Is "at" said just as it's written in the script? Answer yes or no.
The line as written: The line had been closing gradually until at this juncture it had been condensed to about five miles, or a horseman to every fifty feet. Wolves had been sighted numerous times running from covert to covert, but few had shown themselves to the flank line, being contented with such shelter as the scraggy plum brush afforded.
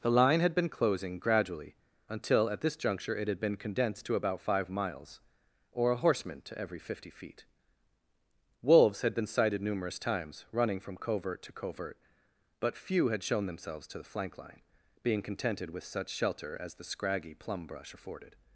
yes